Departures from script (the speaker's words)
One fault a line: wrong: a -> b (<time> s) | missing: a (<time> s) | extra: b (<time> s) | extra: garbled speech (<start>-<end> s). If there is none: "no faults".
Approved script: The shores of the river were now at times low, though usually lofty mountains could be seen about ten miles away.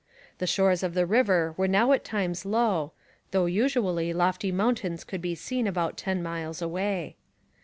no faults